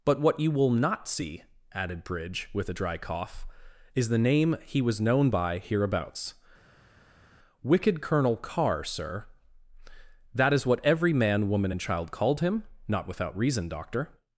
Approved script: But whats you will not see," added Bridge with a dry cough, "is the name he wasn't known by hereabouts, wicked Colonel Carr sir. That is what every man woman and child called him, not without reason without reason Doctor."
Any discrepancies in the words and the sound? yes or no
yes